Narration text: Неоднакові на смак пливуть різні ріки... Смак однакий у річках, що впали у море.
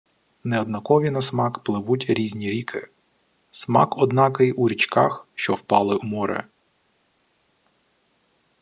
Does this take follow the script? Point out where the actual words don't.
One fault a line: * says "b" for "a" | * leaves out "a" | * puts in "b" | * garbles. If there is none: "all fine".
all fine